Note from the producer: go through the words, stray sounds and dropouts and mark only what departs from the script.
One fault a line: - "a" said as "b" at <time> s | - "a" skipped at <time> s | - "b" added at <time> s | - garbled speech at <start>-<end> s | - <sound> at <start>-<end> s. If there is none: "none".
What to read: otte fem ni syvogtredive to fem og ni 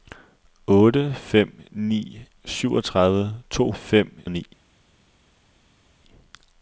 none